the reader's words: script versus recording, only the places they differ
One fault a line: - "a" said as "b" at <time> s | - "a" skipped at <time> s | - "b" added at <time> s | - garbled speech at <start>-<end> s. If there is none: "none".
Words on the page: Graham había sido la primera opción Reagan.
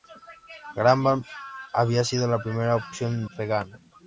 none